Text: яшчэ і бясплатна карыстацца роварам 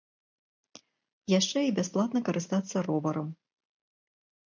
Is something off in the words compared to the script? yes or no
no